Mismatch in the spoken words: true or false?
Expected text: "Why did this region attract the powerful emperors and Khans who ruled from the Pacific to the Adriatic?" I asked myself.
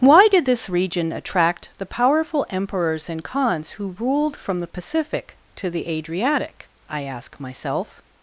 true